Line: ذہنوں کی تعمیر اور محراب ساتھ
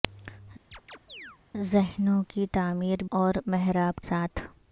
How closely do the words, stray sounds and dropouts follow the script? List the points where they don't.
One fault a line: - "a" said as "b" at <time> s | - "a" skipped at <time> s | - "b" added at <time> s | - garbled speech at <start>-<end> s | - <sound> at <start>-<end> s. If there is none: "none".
- chirp at 0.7-1.4 s